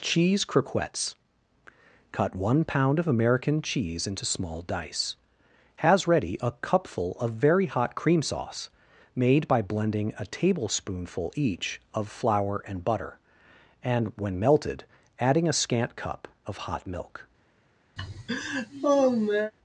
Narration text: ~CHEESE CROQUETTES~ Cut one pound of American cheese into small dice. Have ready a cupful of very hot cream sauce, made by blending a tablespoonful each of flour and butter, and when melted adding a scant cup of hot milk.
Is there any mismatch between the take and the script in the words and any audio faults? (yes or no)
yes